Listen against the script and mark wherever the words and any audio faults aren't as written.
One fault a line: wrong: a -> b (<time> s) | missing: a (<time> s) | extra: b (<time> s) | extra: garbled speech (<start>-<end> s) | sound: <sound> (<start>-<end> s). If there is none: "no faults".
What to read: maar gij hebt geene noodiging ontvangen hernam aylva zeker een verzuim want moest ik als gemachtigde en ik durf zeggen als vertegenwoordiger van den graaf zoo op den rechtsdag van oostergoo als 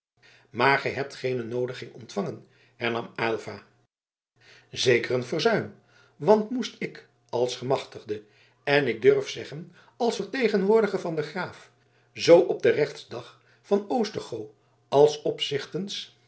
no faults